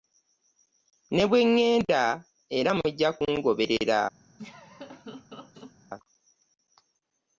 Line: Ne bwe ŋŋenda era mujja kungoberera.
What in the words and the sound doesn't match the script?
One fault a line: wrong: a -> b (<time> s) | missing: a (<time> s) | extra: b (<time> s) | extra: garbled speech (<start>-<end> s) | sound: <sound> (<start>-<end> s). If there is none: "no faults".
sound: laugh (4.4-5.7 s)